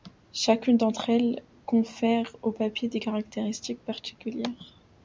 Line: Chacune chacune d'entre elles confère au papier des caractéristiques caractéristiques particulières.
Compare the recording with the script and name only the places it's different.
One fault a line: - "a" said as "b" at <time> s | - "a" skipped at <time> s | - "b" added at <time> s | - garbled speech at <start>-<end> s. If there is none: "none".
- "chacune" skipped at 0.8 s
- "caractéristiques" skipped at 3.8 s